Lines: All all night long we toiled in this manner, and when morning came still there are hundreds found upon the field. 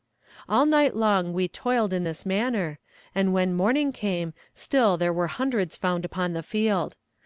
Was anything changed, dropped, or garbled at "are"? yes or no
yes